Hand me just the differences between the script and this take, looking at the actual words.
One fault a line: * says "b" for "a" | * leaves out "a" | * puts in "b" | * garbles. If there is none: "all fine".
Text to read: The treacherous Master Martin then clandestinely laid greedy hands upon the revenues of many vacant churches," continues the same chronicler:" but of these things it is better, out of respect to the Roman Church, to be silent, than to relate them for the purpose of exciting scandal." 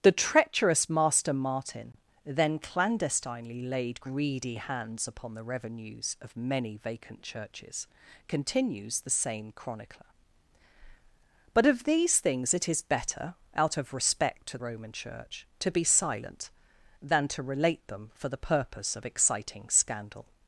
* leaves out "the"